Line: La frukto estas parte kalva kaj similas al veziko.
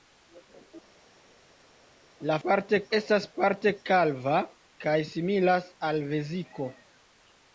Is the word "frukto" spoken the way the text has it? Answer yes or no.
no